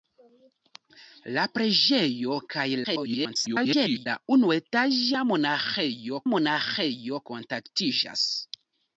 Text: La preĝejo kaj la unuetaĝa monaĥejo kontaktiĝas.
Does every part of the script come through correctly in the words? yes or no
no